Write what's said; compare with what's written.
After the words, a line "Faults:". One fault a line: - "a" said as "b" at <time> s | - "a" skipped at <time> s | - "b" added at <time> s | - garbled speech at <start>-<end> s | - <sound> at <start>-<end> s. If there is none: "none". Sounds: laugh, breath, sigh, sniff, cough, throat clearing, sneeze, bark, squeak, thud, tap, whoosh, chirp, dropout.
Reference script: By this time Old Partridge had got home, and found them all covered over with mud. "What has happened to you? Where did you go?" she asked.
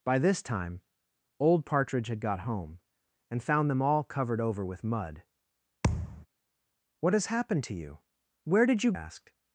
By this time Old Partridge had got home, and found them all covered over with mud. "What has happened to you? Where did you asked.
Faults:
- thud at 5.8-6.3 s
- "go she" skipped at 8.9 s